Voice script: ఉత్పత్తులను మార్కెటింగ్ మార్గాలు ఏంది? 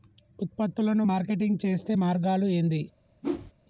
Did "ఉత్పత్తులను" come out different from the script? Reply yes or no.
no